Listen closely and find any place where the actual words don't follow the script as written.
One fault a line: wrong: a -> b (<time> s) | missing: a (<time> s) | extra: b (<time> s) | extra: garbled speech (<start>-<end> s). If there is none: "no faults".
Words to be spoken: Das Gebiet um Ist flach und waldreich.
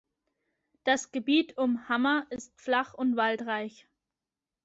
extra: Hammer (1.9 s)